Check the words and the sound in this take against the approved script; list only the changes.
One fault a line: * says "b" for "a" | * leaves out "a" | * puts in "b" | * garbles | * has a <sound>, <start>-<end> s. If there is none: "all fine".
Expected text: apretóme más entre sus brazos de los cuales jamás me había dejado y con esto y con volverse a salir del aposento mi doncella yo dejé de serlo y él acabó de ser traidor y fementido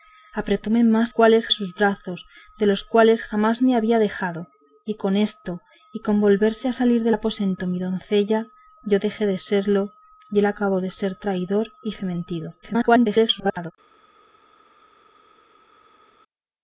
* says "cuales" for "entre"
* garbles